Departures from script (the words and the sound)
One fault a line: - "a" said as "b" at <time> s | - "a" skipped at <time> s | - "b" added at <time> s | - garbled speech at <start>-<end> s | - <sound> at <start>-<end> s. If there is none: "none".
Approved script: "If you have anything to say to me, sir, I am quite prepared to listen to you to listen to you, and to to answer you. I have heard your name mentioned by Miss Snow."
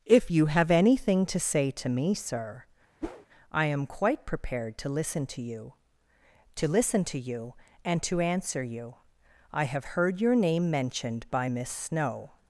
- whoosh at 3.0-3.3 s
- "to" skipped at 8.2 s